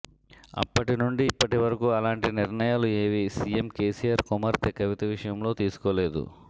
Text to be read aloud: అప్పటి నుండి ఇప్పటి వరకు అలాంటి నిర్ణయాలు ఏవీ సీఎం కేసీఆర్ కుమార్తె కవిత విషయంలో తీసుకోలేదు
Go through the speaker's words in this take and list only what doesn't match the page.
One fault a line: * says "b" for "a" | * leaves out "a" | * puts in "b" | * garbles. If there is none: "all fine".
all fine